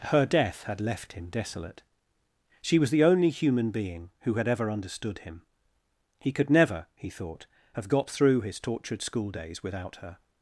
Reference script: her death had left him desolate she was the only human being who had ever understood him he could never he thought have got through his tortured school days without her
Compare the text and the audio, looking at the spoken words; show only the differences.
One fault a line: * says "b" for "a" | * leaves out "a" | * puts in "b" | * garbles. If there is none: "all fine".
all fine